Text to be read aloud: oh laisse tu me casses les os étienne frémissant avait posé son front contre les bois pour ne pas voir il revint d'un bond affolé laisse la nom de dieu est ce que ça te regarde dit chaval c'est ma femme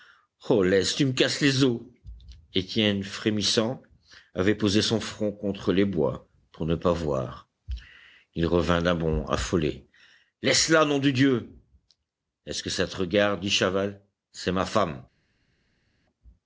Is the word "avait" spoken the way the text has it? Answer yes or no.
yes